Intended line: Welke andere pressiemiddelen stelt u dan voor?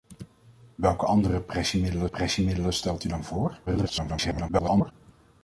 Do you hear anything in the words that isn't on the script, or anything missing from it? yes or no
yes